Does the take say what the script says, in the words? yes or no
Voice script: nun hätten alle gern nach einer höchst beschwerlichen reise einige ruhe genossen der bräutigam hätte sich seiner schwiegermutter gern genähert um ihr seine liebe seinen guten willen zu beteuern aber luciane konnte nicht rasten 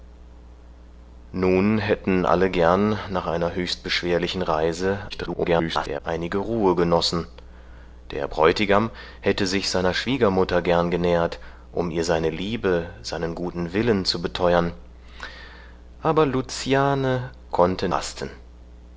no